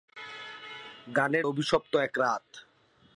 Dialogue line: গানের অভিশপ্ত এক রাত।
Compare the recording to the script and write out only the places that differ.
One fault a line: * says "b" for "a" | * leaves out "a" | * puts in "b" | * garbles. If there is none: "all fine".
all fine